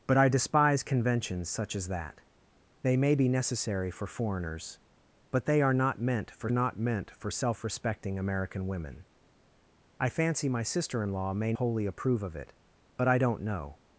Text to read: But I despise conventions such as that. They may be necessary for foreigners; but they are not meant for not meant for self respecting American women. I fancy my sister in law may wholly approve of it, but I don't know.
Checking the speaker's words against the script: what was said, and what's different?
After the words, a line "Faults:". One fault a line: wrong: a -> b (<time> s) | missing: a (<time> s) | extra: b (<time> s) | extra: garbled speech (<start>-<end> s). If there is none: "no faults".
But I despise conventions such as that. They may be necessary for foreigners; but they are not meant for not meant for self respecting American women. I fancy my sister in law may wholly approve of it, but I don't know.
Faults:
no faults